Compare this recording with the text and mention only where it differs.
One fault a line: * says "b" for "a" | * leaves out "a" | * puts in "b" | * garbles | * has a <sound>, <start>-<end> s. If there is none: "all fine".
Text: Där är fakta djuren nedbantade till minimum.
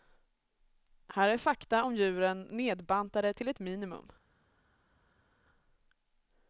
* says "Här" for "Där"
* puts in "om"
* puts in "ett"